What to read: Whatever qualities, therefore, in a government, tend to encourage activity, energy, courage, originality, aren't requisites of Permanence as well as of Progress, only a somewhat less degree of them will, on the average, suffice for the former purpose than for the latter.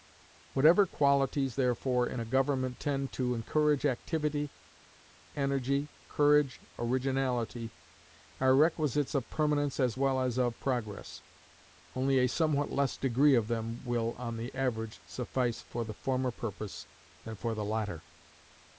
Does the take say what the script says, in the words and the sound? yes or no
no